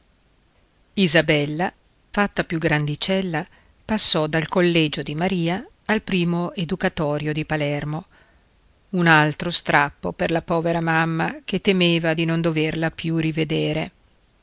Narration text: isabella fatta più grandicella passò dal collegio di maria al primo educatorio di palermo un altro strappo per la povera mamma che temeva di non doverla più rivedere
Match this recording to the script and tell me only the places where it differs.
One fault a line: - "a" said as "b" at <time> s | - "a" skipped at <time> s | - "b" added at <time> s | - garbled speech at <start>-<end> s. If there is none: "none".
none